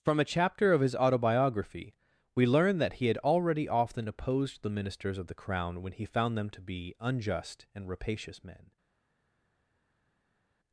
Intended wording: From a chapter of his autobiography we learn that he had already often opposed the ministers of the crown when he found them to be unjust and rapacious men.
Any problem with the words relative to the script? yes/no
no